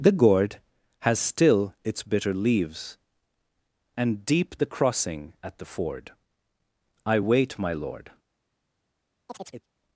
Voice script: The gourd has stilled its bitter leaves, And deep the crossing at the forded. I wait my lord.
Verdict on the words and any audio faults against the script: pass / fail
fail